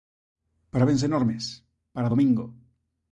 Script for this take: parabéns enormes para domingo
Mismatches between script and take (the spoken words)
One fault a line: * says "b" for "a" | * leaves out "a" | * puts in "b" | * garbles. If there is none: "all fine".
all fine